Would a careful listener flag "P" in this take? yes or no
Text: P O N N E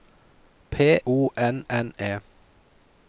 no